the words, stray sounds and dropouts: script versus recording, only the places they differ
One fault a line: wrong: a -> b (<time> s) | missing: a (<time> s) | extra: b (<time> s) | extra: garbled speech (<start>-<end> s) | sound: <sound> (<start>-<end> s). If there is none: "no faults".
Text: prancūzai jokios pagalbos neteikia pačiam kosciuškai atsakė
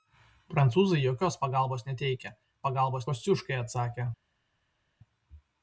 wrong: pačiam -> pagalbos (2.6 s)